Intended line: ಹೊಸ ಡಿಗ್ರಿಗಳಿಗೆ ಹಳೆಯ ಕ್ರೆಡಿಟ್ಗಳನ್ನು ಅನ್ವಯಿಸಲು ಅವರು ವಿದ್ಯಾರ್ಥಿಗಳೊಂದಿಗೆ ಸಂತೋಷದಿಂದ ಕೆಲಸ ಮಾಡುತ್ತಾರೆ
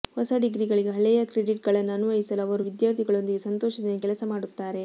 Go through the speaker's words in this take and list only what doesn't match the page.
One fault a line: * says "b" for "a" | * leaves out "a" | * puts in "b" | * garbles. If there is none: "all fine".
all fine